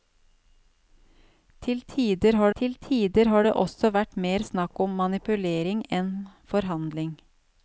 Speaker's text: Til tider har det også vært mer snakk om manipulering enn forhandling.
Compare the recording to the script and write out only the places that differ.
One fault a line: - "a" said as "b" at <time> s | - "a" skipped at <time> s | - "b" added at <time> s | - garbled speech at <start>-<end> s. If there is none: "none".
- "til tider har" added at 2.6 s